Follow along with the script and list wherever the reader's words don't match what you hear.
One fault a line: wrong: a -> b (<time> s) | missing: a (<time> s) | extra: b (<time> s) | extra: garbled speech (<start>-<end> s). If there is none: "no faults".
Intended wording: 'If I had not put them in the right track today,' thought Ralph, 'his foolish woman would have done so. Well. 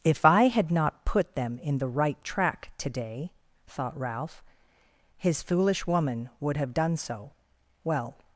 no faults